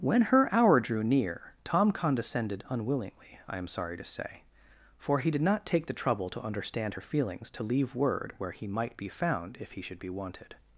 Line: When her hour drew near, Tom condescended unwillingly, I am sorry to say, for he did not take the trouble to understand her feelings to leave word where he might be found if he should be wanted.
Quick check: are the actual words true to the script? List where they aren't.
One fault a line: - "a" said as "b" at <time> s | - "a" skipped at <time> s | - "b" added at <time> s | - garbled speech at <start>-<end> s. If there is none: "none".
none